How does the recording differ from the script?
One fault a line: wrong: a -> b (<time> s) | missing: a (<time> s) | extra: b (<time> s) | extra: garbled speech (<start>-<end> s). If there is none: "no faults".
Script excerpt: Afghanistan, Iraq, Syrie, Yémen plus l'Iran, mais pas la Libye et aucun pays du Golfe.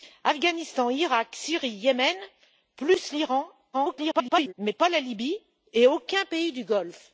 extra: garbled speech (3.7-4.5 s)